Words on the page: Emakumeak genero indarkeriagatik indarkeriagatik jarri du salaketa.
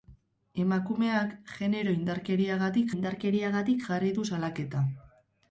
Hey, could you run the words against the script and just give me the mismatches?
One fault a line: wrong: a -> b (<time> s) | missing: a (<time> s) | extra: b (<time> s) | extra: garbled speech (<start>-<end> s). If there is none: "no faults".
no faults